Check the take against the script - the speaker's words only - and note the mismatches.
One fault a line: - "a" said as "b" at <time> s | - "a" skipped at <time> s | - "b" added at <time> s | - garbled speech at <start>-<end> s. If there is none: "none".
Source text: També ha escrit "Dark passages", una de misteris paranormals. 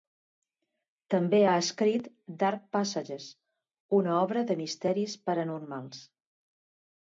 - "obra" added at 4.2 s